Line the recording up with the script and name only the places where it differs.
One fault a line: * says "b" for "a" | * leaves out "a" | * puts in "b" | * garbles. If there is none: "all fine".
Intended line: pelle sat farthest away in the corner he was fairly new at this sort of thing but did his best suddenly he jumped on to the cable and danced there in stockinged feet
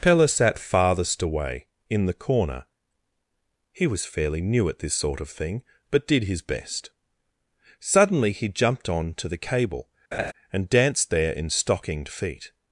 all fine